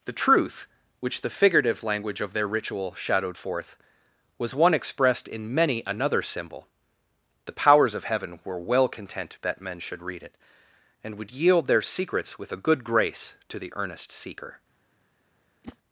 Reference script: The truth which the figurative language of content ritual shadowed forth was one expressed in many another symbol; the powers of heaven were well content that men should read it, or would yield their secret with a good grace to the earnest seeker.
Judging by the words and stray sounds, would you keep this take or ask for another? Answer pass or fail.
fail